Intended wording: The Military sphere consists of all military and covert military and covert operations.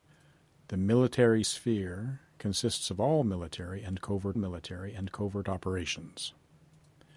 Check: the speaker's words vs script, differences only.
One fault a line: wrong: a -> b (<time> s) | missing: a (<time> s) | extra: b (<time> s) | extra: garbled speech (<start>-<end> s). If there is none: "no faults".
no faults